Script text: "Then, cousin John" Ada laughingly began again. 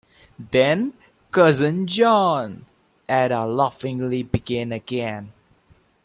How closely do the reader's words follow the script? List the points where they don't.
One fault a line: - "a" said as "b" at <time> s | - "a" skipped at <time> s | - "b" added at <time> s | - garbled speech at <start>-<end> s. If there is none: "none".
none